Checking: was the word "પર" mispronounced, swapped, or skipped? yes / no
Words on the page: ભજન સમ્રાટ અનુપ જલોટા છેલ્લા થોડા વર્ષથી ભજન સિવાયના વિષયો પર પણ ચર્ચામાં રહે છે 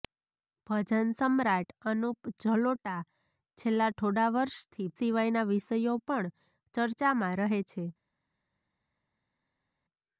yes